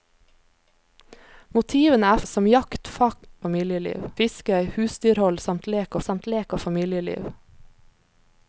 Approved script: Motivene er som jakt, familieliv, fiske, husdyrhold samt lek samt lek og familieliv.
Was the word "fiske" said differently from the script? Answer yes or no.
no